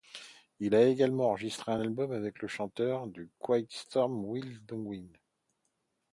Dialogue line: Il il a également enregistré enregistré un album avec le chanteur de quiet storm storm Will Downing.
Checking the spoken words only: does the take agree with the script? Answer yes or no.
no